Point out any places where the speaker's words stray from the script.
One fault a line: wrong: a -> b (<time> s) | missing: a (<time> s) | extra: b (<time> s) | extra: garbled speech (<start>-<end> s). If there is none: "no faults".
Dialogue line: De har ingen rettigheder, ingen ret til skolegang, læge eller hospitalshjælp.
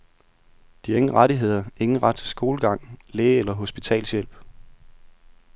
no faults